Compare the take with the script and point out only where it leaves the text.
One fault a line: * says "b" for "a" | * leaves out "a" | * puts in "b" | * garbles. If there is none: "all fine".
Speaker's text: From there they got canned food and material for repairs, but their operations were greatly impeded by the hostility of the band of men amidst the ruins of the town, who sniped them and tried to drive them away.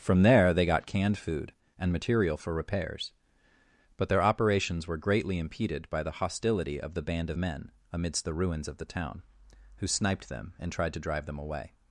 all fine